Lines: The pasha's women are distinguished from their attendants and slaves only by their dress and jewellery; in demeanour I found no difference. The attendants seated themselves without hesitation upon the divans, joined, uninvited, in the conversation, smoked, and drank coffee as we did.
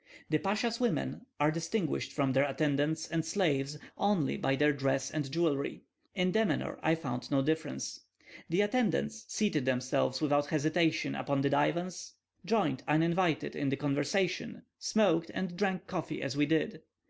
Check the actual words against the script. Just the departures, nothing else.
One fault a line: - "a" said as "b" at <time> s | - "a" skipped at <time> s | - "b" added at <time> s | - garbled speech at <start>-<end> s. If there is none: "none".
none